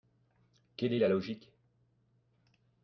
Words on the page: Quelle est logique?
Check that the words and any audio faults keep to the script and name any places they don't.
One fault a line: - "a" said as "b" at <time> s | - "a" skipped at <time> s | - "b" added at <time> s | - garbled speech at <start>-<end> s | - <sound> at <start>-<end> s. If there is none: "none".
- "la" added at 1.0 s